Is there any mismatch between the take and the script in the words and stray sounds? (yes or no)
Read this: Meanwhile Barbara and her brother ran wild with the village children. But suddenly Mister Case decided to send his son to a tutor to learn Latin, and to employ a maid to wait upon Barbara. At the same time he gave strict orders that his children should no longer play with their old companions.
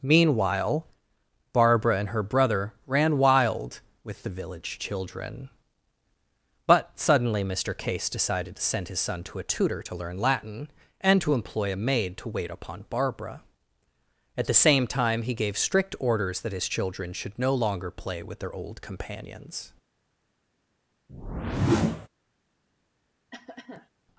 yes